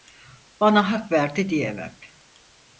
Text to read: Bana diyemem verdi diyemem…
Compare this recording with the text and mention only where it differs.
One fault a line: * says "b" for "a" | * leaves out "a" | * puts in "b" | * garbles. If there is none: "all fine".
* says "hak" for "diyemem"